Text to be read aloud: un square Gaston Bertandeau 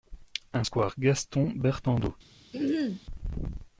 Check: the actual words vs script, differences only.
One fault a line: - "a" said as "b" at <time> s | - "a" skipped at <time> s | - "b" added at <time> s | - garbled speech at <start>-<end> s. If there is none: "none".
none